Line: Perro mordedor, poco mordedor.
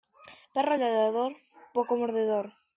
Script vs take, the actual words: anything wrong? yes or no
yes